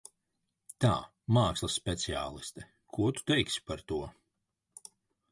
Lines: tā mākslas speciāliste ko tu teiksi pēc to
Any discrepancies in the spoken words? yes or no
yes